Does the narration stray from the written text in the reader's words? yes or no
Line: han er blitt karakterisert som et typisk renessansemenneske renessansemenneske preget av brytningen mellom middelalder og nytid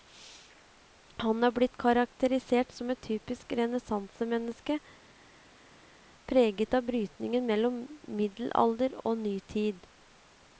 yes